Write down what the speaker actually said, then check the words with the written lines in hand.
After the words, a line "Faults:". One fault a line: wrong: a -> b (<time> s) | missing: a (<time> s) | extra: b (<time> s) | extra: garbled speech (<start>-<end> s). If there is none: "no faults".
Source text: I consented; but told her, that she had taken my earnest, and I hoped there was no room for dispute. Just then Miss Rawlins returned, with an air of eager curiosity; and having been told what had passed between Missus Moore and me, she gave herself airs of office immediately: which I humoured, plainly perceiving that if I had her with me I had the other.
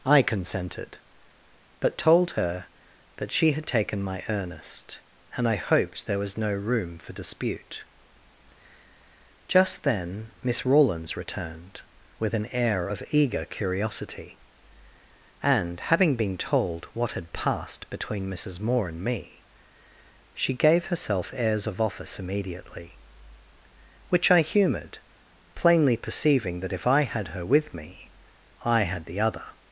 I consented; but told her, that she had taken my earnest, and I hoped there was no room for dispute. Just then Miss Rawlins returned, with an air of eager curiosity; and having been told what had passed between Missus Moore and me, she gave herself airs of office immediately: which I humoured, plainly perceiving that if I had her with me I had the other.
Faults:
no faults